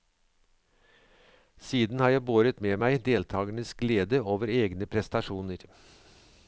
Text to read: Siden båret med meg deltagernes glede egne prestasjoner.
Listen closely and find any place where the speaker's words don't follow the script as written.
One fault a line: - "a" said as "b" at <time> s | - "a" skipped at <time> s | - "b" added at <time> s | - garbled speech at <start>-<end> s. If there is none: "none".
- "har jeg" added at 2.0 s
- "over" added at 4.3 s